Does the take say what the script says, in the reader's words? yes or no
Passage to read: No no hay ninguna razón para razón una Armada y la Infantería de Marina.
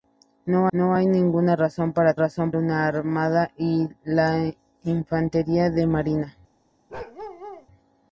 yes